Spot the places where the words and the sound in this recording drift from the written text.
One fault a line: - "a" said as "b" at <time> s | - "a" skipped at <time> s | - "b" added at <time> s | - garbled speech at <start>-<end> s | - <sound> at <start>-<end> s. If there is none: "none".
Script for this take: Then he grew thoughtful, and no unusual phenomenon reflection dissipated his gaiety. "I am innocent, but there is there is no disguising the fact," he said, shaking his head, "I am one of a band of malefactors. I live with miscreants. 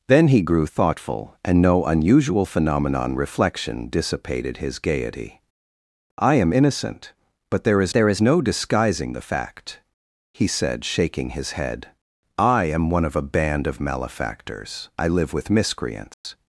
- dropout at 16.1-16.3 s